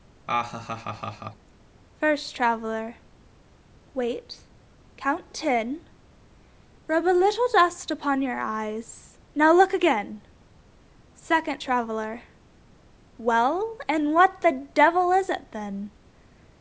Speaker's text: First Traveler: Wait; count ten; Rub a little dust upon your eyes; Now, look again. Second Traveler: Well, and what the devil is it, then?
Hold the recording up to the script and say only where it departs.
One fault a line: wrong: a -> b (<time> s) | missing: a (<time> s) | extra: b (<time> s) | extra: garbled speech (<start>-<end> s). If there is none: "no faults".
no faults